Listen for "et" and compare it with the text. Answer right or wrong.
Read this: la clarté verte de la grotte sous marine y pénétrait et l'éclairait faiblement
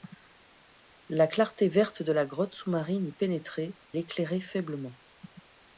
wrong